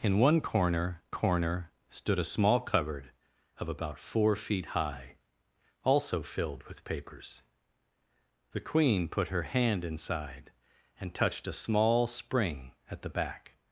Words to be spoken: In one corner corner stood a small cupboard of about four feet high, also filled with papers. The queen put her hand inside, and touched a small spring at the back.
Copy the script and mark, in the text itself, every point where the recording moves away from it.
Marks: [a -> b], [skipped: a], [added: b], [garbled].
In one corner corner stood a small cupboard of about four feet high, also filled with papers. The queen put her hand inside, and touched a small spring at the back.